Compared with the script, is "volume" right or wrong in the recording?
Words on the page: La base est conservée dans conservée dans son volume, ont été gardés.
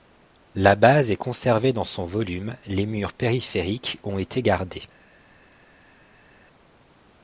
wrong